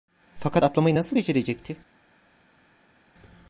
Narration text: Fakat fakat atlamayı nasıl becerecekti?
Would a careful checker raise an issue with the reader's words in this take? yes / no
yes